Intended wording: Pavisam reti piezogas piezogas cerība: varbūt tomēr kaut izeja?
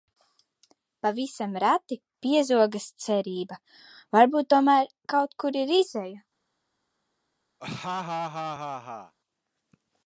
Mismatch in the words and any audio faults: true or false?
true